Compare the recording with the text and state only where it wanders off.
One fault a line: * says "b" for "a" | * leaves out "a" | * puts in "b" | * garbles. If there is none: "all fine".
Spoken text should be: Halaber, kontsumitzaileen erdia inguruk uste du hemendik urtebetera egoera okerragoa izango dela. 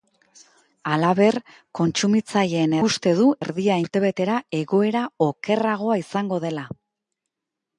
* leaves out "erdia inguruk"
* says "erdia" for "hemendik"